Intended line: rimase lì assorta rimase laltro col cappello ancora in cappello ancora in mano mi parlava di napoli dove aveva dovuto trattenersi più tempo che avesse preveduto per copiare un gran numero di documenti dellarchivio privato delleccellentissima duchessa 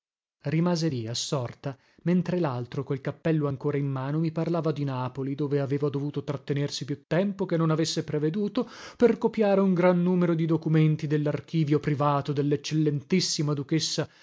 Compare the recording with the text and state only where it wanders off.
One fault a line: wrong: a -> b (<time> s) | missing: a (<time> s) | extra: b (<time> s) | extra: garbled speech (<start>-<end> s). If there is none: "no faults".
wrong: rimase -> mentre (2.0 s)
missing: cappello ancora in (3.9 s)
extra: non (7.6 s)